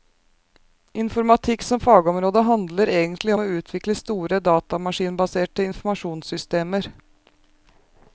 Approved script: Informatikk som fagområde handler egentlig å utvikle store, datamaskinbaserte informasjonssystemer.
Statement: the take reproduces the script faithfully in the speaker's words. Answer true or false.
true